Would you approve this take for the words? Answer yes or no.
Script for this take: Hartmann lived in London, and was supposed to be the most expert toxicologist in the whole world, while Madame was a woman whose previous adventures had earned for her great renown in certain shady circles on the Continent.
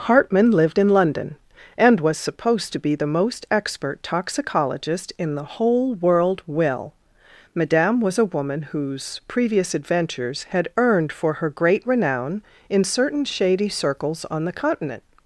no